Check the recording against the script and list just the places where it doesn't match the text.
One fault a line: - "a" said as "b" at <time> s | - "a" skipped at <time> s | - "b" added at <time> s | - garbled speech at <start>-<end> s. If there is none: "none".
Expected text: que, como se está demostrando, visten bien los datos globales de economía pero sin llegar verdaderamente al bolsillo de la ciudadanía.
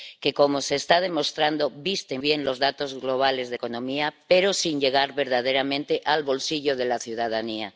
none